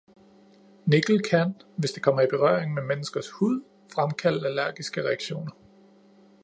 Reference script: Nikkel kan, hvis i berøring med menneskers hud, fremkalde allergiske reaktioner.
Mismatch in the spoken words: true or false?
true